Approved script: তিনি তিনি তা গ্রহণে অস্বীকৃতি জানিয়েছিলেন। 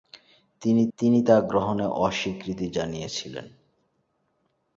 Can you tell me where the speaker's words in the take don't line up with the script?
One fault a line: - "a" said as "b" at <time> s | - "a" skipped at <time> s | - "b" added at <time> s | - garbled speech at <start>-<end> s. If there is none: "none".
none